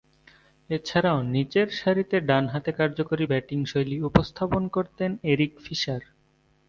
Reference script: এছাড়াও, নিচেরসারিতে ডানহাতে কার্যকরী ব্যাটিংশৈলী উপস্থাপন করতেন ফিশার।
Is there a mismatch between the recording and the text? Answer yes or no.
yes